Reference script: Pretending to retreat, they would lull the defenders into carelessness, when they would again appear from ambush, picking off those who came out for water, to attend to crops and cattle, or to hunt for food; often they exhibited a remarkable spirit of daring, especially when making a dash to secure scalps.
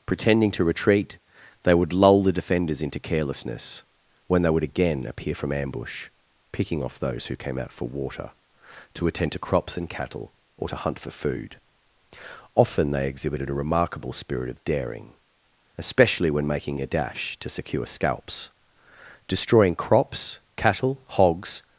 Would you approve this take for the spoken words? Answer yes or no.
no